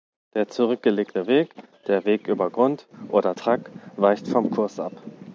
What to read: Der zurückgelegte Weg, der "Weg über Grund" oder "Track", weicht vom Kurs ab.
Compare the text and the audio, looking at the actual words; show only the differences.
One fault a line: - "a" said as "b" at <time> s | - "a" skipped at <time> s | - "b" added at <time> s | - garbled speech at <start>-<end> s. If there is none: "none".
none